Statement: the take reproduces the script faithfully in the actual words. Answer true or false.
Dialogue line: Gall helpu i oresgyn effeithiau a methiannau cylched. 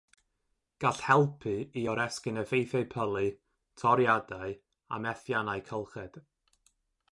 false